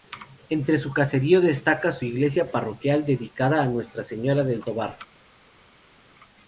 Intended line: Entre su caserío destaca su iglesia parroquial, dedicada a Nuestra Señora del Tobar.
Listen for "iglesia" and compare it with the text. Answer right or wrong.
right